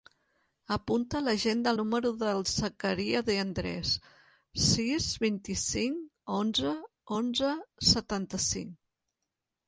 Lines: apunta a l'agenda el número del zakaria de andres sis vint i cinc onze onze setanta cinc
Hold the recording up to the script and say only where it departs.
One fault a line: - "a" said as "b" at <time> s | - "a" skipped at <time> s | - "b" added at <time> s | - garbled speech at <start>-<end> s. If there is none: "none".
none